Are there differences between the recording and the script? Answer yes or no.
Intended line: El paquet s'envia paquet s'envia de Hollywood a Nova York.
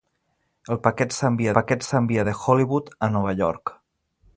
no